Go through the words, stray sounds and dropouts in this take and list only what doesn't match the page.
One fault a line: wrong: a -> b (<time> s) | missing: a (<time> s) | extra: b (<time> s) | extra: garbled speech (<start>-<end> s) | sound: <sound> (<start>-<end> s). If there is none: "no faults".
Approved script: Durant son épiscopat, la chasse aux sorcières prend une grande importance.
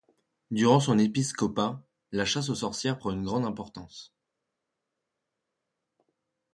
no faults